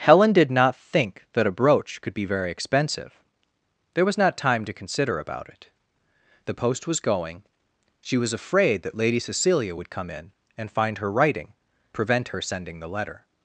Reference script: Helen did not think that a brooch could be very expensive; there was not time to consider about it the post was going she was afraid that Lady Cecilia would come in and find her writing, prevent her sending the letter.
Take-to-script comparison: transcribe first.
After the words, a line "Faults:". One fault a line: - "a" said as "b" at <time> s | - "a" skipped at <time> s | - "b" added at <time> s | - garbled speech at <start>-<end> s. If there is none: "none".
Helen did not think that a brooch could be very expensive; there was not time to consider about it the post was going she was afraid that Lady Cecilia would come in and find her writing, prevent her sending the letter.
Faults:
none